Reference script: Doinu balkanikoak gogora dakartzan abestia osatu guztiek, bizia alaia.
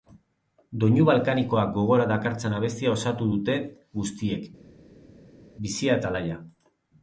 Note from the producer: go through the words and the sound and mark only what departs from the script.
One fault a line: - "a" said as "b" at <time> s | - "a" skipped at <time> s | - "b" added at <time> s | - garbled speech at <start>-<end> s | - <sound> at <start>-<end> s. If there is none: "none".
- "dute" added at 3.3 s
- "eta" added at 6.0 s